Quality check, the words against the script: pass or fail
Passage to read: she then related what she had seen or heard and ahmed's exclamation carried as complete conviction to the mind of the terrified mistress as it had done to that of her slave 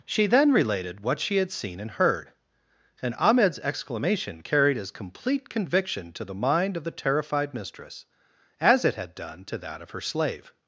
fail